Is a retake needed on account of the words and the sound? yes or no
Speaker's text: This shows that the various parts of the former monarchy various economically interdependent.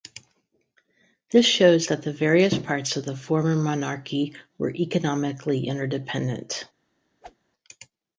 yes